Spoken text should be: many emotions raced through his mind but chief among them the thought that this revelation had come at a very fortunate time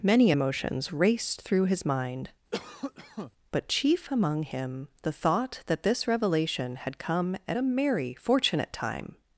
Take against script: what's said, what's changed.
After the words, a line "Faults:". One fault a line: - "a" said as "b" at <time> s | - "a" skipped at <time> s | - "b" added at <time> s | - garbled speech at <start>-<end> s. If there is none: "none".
many emotions raced through his mind but chief among him the thought that this revelation had come at a merry fortunate time
Faults:
- "them" said as "him" at 4.4 s
- "very" said as "merry" at 7.6 s